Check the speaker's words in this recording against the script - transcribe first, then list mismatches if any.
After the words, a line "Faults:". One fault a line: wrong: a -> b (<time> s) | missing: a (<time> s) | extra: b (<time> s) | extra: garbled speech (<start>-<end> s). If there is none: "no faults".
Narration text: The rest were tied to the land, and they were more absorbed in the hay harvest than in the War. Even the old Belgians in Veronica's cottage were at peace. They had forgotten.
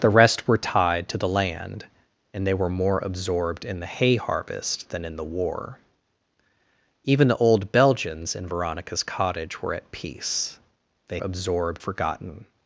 The rest were tied to the land, and they were more absorbed in the hay harvest than in the War. Even the old Belgians in Veronica's cottage were at peace. They absorbed forgotten.
Faults:
wrong: had -> absorbed (11.2 s)